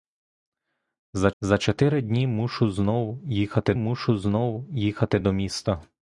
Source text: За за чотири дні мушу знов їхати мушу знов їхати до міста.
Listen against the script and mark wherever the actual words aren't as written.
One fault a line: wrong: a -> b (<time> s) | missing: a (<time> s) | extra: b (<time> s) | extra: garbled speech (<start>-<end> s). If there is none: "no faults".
no faults